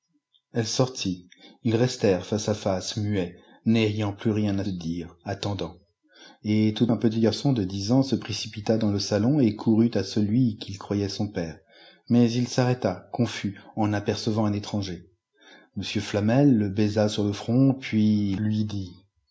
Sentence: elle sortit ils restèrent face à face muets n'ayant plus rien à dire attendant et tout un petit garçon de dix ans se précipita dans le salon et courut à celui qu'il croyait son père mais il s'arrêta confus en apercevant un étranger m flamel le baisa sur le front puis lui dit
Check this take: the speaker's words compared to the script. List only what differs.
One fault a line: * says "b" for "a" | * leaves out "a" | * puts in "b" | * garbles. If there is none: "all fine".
all fine